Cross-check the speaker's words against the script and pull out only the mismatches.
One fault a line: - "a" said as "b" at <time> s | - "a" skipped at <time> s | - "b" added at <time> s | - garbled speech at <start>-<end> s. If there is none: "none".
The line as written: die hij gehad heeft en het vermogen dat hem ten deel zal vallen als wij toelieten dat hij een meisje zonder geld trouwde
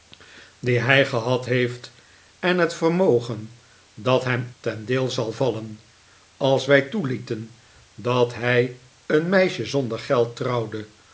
none